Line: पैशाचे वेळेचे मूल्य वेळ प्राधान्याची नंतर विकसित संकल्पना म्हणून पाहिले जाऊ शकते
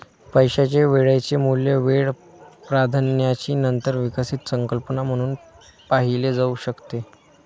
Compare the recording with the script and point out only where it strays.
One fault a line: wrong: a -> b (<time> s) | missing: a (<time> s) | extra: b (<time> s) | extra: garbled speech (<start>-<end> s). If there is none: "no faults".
no faults